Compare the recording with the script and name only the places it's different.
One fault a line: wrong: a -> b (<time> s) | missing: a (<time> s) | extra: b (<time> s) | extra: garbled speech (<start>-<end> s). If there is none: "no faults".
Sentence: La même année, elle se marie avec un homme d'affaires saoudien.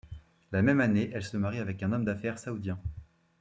no faults